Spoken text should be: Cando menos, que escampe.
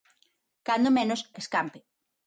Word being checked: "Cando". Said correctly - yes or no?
yes